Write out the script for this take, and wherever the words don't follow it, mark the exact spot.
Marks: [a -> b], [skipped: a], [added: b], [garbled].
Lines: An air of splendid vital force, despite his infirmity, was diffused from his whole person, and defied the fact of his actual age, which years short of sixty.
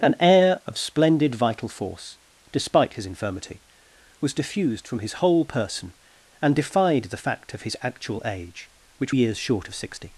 An air of splendid vital force, despite his infirmity, was diffused from his whole person, and defied the fact of his actual age, which years short of sixty.